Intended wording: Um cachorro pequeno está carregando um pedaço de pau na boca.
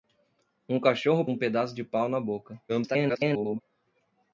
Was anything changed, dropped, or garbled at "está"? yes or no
yes